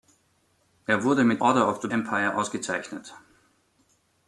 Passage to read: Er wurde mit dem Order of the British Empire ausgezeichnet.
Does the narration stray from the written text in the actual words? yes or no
yes